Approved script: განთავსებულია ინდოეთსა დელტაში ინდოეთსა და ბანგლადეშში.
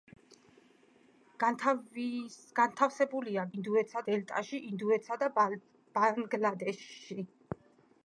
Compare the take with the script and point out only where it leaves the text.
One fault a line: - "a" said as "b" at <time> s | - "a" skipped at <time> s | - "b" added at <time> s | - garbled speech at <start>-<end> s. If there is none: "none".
none